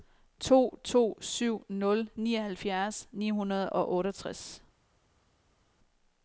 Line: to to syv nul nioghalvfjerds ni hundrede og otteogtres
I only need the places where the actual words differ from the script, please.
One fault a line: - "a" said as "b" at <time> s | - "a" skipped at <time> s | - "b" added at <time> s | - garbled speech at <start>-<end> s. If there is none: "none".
none